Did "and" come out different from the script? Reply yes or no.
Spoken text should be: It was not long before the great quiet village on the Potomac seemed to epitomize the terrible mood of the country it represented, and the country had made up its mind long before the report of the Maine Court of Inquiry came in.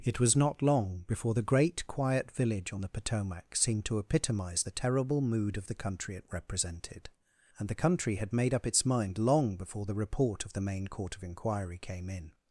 no